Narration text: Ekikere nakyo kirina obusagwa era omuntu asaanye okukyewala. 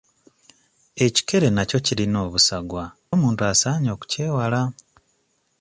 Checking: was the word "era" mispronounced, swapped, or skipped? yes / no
yes